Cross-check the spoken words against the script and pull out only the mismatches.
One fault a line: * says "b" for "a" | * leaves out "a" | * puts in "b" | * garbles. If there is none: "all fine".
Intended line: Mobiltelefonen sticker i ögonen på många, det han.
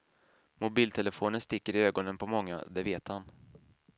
* puts in "vet"